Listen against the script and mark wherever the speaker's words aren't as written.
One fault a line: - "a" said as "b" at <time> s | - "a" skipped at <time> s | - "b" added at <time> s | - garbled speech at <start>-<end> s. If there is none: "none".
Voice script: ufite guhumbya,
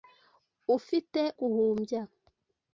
none